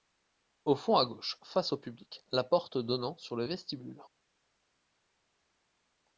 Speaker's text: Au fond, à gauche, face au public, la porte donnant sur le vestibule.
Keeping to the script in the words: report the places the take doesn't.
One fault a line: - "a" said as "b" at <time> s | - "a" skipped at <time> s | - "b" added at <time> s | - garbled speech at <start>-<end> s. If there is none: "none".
none